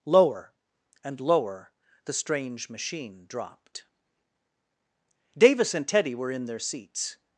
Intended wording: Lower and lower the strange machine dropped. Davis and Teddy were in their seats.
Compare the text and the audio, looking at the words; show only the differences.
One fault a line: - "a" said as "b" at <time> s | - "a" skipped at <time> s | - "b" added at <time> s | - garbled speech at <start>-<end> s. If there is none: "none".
none